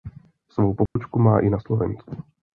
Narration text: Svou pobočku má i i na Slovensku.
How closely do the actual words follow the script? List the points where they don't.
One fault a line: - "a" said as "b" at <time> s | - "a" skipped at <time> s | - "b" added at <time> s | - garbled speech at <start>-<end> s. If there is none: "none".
- "i" skipped at 1.5 s